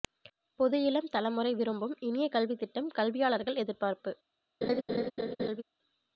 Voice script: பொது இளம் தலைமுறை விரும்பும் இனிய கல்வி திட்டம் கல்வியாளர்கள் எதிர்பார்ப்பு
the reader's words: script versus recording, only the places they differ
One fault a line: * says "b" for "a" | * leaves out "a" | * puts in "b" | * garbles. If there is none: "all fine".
all fine